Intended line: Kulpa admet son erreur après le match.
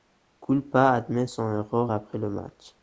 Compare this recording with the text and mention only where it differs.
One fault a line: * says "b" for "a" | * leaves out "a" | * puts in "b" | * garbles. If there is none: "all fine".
all fine